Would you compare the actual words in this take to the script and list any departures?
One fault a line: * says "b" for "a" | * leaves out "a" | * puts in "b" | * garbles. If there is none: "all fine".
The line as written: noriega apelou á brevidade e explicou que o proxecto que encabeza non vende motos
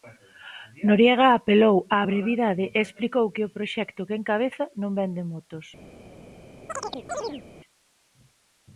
all fine